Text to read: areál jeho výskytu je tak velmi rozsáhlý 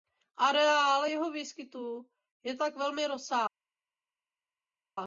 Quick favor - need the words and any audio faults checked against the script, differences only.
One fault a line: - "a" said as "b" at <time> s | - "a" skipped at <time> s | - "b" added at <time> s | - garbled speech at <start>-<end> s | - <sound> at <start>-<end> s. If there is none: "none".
none